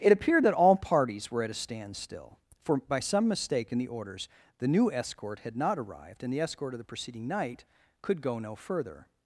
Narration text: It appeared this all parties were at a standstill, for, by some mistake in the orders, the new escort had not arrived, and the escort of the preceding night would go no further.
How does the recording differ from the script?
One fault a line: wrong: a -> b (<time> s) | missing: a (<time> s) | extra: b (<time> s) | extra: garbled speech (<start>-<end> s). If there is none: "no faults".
wrong: this -> that (0.5 s)
wrong: would -> could (8.0 s)